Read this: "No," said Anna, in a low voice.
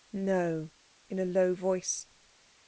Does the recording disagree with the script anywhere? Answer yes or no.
yes